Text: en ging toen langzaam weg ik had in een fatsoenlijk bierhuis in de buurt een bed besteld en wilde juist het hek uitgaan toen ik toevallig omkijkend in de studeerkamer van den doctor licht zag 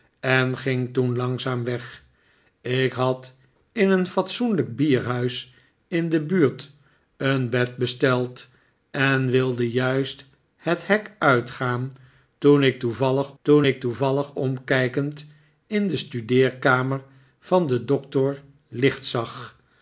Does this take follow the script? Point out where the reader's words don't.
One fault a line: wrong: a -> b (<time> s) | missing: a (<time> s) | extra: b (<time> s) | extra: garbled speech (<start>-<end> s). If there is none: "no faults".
extra: toen ik toevallig (13.4 s)